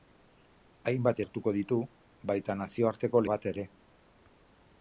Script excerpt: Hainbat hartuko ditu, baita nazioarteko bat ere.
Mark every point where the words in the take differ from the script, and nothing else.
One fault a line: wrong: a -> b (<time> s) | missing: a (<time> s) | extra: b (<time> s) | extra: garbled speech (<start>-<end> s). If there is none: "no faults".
no faults